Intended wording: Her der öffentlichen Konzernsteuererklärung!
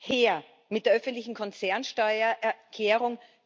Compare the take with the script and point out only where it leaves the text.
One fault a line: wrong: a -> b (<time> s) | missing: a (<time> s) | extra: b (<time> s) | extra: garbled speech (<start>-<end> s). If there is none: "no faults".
extra: mit (0.7 s)